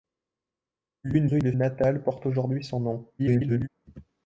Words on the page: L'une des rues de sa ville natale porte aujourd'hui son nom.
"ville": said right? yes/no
no